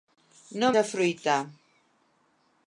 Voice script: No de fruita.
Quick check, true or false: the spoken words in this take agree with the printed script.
true